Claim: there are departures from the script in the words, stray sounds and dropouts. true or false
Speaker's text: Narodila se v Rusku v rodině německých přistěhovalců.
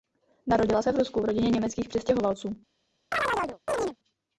true